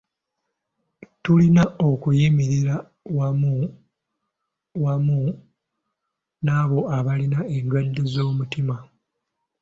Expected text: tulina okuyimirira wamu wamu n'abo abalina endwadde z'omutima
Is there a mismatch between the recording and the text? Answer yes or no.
no